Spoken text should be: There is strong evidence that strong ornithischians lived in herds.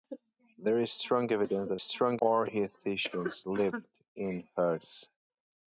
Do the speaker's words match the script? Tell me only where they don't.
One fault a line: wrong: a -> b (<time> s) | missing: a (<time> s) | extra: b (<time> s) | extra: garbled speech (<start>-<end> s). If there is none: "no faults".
no faults